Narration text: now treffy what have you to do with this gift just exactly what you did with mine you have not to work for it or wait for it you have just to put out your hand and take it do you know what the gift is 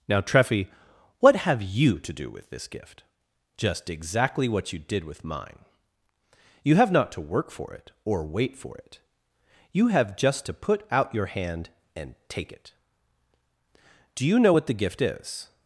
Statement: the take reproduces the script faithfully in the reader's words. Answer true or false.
true